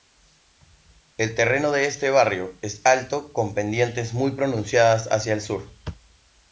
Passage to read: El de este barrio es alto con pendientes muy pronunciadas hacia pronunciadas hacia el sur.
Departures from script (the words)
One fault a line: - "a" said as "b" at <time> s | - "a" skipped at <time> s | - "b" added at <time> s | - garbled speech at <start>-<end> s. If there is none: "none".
- "terreno" added at 1.4 s
- "pronunciadas hacia" skipped at 5.3 s